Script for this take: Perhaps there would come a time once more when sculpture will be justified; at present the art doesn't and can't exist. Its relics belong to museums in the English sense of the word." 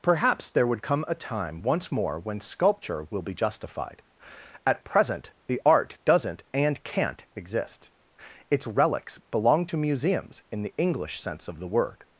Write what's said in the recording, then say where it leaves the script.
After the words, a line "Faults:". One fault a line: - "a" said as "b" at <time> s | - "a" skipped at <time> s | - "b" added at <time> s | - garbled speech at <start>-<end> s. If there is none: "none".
Perhaps there would come a time once more when sculpture will be justified; at present the art doesn't and can't exist. Its relics belong to museums in the English sense of the word."
Faults:
none